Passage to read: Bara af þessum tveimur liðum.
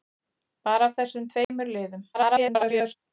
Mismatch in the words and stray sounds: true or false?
true